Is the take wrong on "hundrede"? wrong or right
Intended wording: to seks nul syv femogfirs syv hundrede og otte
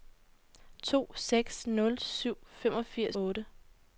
wrong